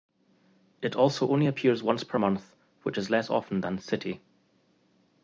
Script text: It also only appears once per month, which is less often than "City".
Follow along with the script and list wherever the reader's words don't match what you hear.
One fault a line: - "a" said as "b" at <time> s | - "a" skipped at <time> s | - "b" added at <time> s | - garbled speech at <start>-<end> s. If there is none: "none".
none